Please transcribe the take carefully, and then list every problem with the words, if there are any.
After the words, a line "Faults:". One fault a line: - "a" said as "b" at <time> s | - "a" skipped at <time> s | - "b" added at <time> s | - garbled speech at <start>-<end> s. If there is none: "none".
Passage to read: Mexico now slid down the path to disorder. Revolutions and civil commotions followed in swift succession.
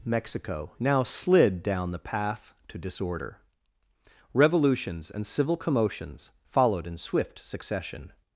Mexico now slid down the path to disorder. Revolutions and civil commotions followed in swift succession.
Faults:
none